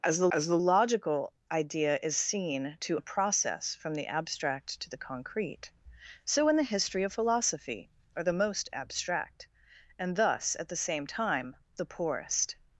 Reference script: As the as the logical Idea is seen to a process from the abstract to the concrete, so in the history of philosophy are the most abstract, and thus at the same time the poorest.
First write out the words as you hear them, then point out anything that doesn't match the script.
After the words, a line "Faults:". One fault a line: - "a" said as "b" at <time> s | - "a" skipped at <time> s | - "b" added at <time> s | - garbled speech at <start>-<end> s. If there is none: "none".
As the as the logical Idea is seen to a process from the abstract to the concrete, so in the history of philosophy are the most abstract, and thus at the same time the poorest.
Faults:
none